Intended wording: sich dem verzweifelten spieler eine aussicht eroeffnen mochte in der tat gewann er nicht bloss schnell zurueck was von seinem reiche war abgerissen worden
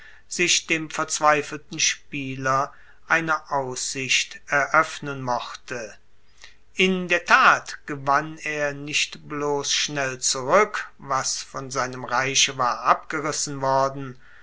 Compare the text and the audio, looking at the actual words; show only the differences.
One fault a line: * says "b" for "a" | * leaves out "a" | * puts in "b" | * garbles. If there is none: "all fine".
all fine